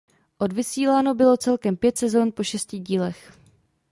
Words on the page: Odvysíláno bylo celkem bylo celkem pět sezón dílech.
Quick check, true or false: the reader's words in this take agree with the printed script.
false